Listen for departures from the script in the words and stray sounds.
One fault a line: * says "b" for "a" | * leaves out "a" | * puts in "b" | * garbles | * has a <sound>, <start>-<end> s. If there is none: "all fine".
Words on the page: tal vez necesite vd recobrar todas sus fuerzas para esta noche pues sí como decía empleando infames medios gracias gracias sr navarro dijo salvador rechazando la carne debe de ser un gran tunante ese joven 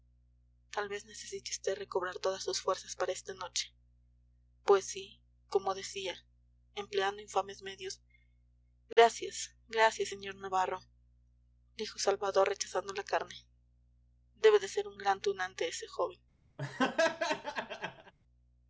* has a dropout, 8.9-9.0 s
* has a laugh, 16.6-18.1 s